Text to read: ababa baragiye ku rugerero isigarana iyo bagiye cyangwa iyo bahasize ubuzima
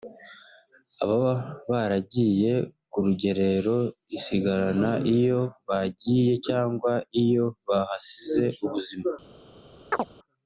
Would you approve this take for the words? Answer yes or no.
yes